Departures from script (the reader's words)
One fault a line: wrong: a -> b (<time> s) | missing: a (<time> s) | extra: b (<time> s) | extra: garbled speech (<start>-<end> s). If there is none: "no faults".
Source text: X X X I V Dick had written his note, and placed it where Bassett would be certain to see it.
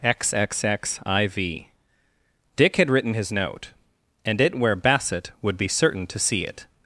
missing: placed (4.4 s)